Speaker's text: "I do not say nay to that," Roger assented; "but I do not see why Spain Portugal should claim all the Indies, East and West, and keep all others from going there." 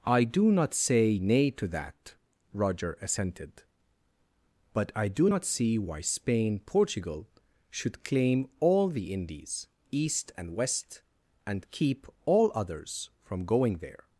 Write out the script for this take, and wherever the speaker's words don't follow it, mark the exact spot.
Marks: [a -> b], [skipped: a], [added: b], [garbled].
"I do not say nay to that," Roger assented; "but I do not see why Spain Portugal should claim all the Indies, East and West, and keep all others from going there."